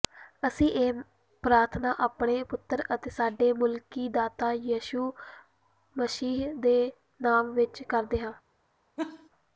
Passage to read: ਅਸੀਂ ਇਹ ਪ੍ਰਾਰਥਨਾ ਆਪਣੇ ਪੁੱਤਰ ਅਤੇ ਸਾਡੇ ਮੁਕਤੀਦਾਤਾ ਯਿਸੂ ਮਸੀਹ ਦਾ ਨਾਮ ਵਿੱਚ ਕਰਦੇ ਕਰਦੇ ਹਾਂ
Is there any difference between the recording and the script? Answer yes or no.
yes